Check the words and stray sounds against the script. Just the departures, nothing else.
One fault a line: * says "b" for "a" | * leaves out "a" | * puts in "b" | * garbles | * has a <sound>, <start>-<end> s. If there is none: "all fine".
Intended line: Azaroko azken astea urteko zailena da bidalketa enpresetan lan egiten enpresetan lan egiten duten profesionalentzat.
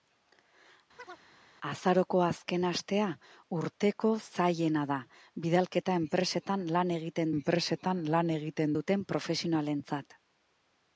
* has a chirp, 1.0-1.3 s